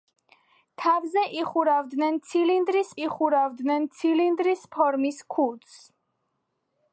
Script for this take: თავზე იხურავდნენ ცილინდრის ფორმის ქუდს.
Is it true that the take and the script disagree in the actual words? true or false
true